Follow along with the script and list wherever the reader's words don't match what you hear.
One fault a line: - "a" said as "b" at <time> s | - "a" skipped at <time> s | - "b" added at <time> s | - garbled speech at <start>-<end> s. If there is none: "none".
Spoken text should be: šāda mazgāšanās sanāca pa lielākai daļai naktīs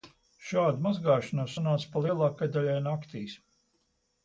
none